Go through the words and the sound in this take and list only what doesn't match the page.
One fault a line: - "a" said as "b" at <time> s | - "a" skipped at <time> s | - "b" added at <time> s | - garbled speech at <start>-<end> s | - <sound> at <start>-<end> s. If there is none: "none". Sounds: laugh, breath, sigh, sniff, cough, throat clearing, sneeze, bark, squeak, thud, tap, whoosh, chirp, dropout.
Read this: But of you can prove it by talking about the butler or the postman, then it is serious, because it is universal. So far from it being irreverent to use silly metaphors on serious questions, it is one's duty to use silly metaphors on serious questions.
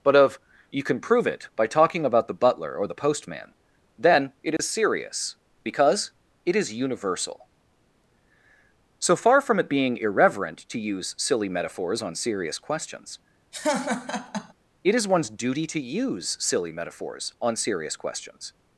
- dropout at 4.6-4.6 s
- laugh at 13.5-14.5 s